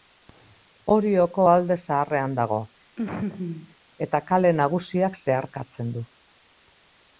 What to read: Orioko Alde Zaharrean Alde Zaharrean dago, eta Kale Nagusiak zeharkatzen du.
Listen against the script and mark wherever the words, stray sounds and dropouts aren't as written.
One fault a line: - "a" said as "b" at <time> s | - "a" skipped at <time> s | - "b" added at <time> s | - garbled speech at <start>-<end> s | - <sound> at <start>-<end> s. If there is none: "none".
- "Alde Zaharrean" skipped at 2.4 s
- laugh at 3.0-3.7 s